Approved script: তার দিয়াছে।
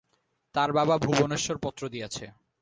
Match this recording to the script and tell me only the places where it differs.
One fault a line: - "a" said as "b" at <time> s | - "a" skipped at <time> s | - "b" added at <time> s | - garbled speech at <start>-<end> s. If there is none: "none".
- "বাবা ভুবনেশ্বর পত্র" added at 0.7 s